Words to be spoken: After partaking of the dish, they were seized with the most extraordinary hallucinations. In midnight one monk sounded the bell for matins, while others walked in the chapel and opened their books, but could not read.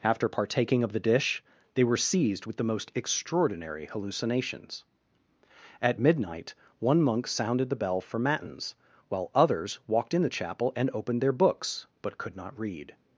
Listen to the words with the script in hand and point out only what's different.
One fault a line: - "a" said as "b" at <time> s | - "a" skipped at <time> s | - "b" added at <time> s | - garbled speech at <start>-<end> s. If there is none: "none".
- "In" said as "At" at 5.8 s